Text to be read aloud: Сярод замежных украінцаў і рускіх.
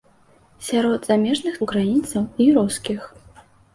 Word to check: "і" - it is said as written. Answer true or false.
true